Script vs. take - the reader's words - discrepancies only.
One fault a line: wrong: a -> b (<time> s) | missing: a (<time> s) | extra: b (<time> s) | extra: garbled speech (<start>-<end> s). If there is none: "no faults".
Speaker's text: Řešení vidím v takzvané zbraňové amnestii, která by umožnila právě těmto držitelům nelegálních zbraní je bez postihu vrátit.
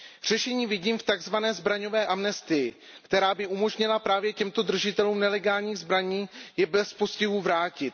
no faults